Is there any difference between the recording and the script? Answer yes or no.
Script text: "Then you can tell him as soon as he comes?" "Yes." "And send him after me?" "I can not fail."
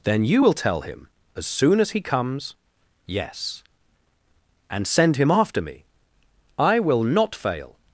yes